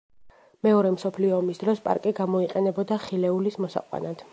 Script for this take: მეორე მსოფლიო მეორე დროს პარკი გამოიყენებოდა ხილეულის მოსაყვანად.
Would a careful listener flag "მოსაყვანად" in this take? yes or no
no